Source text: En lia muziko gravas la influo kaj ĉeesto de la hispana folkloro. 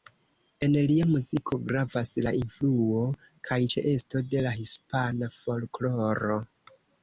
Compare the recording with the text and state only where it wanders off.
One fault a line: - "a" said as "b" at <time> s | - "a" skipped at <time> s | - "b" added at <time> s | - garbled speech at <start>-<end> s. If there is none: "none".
none